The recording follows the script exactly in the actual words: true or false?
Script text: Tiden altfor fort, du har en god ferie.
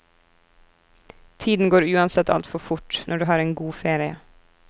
false